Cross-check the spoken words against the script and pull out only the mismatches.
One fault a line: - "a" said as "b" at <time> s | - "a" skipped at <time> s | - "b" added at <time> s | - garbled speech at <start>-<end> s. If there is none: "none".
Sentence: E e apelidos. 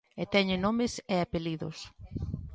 - "teñen nomes" added at 0.3 s